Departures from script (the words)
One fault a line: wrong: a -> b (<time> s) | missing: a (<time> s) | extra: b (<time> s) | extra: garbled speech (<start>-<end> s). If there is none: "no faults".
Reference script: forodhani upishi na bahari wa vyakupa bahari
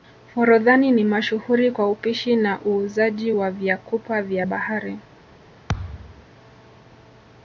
extra: ni mashuhuri kwa (0.9 s)
wrong: bahari -> uuzaji (2.6 s)
extra: vya (4.2 s)